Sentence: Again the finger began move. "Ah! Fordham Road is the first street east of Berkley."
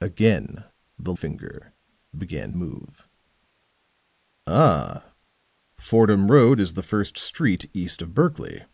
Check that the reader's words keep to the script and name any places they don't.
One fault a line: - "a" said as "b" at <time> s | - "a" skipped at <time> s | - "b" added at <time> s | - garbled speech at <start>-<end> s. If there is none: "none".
none